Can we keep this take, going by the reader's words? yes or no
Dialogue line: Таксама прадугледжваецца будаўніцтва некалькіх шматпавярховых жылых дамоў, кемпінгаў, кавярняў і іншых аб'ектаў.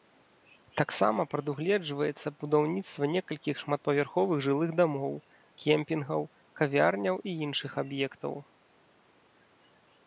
yes